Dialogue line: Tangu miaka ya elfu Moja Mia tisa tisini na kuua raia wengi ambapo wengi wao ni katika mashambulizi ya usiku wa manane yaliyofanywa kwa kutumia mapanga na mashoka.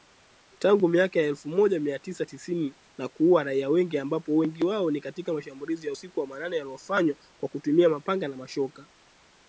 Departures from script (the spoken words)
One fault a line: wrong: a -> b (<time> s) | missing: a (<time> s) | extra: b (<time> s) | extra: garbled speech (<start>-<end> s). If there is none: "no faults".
no faults